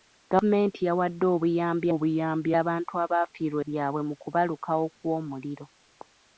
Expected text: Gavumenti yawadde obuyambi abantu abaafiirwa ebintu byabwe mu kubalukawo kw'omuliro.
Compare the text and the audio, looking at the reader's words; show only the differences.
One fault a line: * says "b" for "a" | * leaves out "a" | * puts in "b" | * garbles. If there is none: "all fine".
* puts in "obuyambi"
* leaves out "ebintu"